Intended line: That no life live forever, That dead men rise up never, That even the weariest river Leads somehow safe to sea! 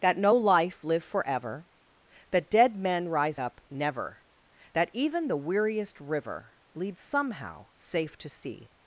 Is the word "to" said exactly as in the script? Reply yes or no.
yes